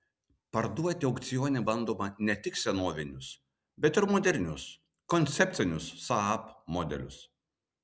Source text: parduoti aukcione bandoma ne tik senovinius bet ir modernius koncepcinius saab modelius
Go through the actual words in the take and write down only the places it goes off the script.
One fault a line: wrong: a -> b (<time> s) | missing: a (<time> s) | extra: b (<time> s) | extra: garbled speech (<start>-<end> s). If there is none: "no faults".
no faults